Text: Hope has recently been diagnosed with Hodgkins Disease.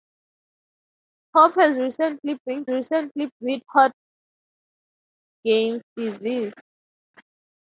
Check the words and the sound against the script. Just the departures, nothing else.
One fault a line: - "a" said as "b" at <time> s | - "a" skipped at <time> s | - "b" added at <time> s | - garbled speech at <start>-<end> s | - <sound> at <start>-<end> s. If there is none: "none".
- "diagnosed" said as "recently" at 2.7 s